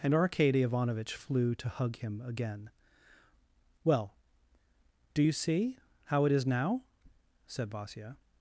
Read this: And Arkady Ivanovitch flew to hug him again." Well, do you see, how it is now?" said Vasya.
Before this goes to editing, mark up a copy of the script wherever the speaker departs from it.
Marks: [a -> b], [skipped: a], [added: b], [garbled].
And Arkady Ivanovitch flew to hug him again." Well, do you see, how it is now?" said Vasya.